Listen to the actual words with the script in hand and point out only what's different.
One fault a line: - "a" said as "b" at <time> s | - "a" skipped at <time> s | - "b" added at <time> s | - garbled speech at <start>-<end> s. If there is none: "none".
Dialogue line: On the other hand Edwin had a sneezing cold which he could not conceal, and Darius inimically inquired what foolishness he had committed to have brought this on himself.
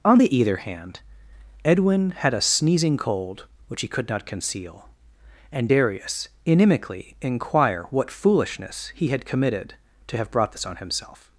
- "other" said as "either" at 0.3 s
- "inquired" said as "inquire" at 7.2 s